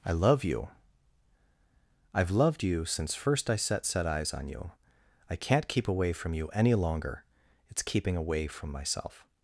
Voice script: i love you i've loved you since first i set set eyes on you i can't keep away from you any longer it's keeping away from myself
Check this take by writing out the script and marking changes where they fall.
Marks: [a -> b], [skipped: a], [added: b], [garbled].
i love you i've loved you since first i set set eyes on you i can't keep away from you any longer it's keeping away from myself